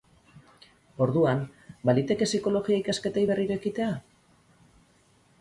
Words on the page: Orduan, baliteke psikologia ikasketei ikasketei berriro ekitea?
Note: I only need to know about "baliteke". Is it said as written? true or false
true